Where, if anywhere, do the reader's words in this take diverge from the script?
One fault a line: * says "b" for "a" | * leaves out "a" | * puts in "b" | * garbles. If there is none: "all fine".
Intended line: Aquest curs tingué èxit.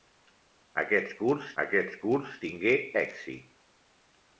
* puts in "aquest curs"